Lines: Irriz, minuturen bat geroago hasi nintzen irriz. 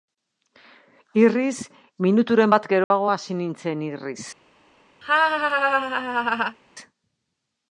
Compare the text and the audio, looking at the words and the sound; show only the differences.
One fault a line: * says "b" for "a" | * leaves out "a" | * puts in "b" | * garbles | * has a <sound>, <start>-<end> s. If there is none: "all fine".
* has a dropout, 2.8-2.9 s
* has a laugh, 5.0-6.6 s